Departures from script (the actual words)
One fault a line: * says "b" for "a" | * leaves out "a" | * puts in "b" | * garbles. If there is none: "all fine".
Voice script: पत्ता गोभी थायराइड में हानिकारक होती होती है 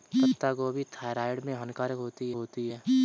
all fine